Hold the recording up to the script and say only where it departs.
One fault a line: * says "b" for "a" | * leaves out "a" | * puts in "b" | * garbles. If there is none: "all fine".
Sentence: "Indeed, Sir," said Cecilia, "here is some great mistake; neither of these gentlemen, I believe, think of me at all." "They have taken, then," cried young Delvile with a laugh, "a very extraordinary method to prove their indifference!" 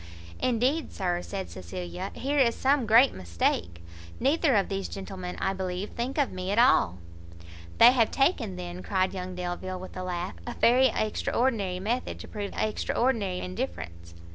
* says "extraordinary" for "their"